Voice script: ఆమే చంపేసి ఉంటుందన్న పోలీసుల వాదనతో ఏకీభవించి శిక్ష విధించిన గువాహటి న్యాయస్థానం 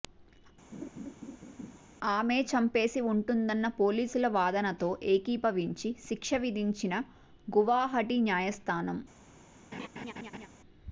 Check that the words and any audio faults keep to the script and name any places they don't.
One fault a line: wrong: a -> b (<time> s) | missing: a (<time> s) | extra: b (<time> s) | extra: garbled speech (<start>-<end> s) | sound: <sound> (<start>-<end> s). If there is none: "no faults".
sound: laugh (0.7-1.8 s)
sound: laugh (9.7-10.5 s)